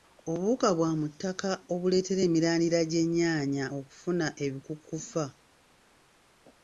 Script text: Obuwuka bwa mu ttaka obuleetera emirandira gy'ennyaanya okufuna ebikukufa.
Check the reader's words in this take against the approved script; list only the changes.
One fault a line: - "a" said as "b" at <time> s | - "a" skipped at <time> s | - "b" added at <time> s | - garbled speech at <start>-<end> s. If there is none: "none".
none